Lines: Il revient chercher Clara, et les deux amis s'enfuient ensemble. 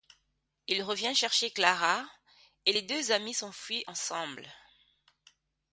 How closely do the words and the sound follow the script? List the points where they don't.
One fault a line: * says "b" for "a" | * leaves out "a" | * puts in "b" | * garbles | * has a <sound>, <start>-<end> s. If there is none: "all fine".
all fine